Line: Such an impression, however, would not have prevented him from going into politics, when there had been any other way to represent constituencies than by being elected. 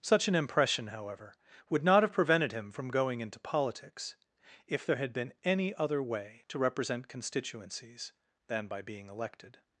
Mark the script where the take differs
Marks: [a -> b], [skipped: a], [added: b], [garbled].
Such an impression, however, would not have prevented him from going into politics, [when -> if] there had been any other way to represent constituencies than by being elected.